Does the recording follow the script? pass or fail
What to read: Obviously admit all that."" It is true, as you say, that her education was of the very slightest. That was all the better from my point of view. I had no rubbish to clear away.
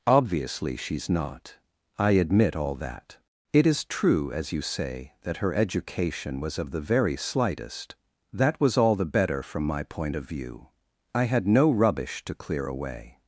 fail